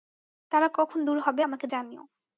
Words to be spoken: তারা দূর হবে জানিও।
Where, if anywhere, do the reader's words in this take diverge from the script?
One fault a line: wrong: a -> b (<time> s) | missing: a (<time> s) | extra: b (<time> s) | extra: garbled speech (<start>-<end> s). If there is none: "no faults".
extra: কখন (0.7 s)
extra: আমাকে (1.4 s)